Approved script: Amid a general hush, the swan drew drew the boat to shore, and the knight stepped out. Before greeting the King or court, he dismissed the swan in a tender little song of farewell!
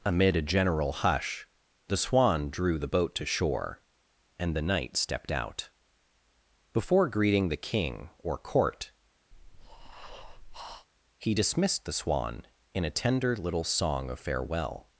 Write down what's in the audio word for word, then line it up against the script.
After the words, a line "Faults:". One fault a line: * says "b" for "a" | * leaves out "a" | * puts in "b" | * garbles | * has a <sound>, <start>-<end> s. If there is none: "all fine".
Amid a general hush, the swan drew the boat to shore, and the knight stepped out. Before greeting the King or court, he dismissed the swan in a tender little song of farewell!
Faults:
* leaves out "drew"
* has a breath, 9.3-10.9 s